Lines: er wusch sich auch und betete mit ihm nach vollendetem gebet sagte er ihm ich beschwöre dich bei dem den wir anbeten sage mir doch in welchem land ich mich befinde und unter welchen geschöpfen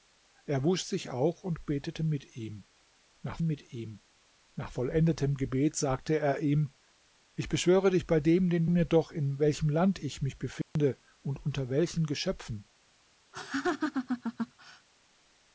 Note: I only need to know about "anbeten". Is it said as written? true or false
false